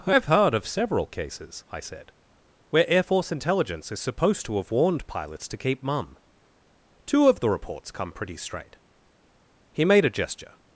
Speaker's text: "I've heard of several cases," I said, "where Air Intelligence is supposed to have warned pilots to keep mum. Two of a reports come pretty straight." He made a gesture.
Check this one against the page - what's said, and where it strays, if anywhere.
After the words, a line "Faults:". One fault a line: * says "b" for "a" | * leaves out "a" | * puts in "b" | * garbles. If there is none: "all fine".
"I've heard of several cases," I said, "where Air Force Intelligence is supposed to have warned pilots to keep mum. Two of the reports come pretty straight." He made a gesture.
Faults:
* puts in "Force"
* says "the" for "a"